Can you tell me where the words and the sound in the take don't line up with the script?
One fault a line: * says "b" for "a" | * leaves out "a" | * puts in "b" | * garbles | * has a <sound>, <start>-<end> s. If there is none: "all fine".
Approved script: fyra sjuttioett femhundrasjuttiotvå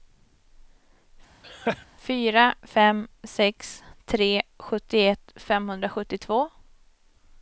* has a laugh, 1.4-1.9 s
* puts in "fem sex tre"